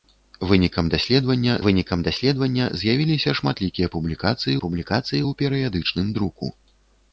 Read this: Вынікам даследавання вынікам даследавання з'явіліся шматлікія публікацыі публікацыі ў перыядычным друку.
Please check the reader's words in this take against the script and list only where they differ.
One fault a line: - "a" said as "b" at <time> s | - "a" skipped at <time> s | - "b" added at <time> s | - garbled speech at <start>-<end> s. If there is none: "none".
none